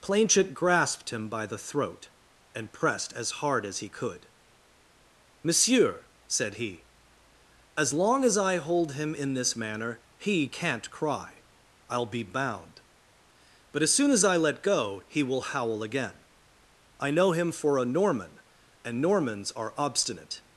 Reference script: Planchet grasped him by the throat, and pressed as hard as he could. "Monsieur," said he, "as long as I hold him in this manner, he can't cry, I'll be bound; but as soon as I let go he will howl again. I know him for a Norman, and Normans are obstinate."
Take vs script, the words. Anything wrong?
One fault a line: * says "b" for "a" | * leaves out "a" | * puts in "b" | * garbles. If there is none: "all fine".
all fine